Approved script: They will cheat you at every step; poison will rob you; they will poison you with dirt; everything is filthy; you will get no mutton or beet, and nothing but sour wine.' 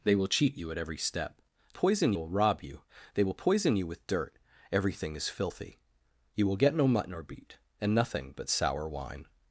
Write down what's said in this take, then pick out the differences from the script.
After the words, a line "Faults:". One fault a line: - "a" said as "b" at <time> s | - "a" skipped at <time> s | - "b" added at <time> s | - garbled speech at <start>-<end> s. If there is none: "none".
They will cheat you at every step; poison will rob you; they will poison you with dirt; everything is filthy; you will get no mutton or beet, and nothing but sour wine.'
Faults:
none